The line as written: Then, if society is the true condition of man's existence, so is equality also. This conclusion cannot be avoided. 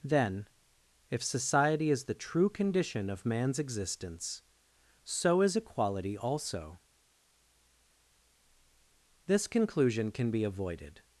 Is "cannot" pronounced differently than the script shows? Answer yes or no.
yes